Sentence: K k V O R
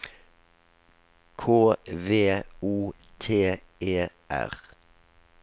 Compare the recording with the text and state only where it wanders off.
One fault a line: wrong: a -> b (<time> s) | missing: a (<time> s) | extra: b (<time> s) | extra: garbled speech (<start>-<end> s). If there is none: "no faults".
missing: k (1.8 s)
extra: T E (3.2 s)